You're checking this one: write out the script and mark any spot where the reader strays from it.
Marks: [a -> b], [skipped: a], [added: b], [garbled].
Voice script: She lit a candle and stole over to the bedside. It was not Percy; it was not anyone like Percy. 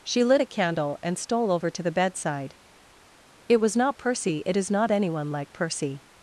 She lit a candle and stole over to the bedside. It was not Percy; it [was -> is] not anyone like Percy.